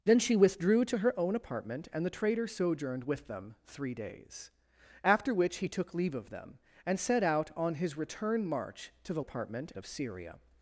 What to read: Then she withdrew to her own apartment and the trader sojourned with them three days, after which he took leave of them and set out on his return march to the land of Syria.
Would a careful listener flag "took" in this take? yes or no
no